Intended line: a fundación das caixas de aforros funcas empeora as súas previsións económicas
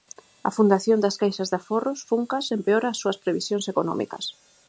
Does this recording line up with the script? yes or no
yes